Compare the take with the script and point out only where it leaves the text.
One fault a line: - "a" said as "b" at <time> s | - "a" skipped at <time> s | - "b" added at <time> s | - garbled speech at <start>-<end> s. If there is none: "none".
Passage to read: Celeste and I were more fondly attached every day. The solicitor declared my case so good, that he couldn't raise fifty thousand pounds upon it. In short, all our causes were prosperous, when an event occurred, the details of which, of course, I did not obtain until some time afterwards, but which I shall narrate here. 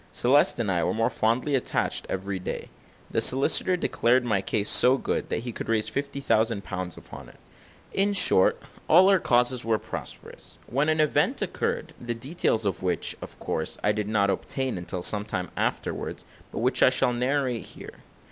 - "couldn't" said as "could" at 5.5 s